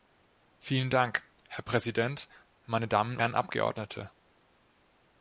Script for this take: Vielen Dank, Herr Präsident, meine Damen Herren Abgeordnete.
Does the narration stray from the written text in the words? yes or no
no